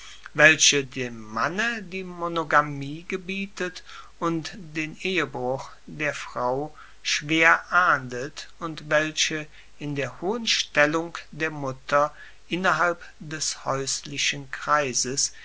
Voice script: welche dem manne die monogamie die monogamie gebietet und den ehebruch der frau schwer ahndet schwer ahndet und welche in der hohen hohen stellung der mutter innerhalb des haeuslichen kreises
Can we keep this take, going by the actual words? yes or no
no